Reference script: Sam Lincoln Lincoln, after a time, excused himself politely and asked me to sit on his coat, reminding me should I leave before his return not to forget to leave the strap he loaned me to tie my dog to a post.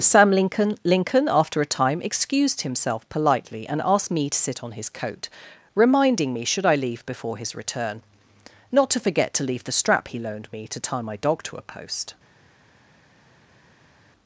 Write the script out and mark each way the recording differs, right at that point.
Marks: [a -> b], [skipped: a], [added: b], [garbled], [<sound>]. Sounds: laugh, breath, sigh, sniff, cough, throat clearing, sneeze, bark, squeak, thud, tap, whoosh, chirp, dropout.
Sam Lincoln Lincoln, after a time, excused himself politely and asked me to sit on his coat, reminding me should I leave before his return not to forget to leave the strap he loaned me to tie my dog to a post.